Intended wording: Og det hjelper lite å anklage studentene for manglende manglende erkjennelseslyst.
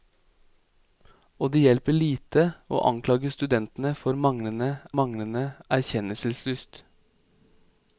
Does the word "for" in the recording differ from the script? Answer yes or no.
no